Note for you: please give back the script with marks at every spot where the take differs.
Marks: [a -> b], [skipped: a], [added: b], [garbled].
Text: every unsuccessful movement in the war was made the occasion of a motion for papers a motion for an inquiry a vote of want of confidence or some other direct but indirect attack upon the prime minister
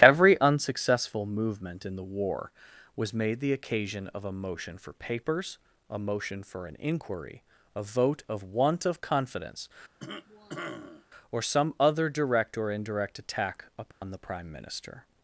every unsuccessful movement in the war was made the occasion of a motion for papers a motion for an inquiry a vote of want of confidence or some other direct [but -> or] indirect attack upon the prime minister